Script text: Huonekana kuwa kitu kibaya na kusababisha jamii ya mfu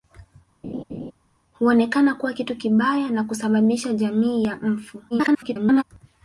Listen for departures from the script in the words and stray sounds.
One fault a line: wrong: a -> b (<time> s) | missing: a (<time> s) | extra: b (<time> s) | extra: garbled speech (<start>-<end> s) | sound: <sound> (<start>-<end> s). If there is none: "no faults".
sound: laugh (0.6-1.1 s)
extra: garbled speech (5.1-5.8 s)